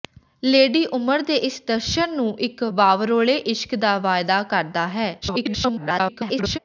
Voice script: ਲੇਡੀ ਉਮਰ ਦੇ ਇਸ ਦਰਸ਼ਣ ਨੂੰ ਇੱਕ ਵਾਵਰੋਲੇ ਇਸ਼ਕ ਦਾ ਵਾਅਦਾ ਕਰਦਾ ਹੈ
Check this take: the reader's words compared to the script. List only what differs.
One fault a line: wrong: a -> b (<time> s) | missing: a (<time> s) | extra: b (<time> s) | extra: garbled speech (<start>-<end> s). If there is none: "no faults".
extra: garbled speech (5.2-6.6 s)